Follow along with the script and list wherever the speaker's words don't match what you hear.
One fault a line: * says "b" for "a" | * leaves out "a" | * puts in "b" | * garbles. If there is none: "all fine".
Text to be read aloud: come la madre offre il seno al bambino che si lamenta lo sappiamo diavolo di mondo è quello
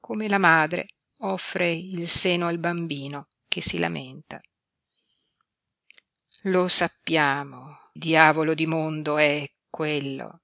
all fine